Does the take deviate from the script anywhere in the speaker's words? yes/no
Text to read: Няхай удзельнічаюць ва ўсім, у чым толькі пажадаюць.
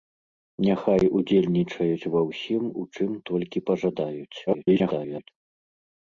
yes